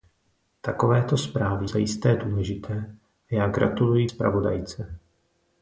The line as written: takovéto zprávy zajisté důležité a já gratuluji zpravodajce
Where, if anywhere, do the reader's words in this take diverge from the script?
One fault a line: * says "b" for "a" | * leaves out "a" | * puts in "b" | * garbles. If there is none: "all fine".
all fine